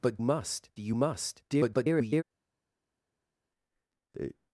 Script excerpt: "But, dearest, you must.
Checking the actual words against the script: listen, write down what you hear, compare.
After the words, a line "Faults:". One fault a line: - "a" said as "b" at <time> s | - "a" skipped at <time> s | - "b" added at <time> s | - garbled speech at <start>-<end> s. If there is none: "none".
"But, must, you must. [garbled]
Faults:
- "dearest" said as "must" at 0.2 s
- garbled speech at 1.5-2.2 s